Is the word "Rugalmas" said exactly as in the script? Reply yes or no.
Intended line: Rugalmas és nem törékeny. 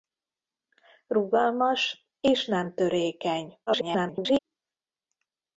yes